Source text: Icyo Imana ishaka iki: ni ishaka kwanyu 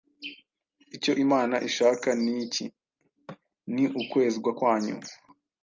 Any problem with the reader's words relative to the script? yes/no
yes